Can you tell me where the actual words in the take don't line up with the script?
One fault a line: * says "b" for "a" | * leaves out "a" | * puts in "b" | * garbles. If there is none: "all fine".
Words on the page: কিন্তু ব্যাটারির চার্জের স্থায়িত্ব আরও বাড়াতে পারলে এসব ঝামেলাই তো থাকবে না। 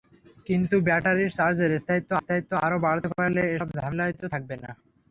* puts in "স্থায়িত্ব"